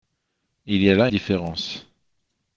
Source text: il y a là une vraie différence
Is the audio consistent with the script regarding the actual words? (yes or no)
no